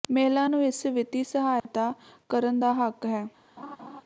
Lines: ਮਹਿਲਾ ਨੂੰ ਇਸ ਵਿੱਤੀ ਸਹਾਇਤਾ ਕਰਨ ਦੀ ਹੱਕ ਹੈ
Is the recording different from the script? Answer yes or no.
yes